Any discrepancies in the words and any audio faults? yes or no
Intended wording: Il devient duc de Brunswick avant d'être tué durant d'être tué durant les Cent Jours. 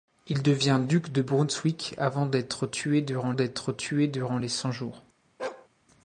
yes